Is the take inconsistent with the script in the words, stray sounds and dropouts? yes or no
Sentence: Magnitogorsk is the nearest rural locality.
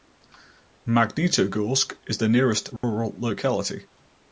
yes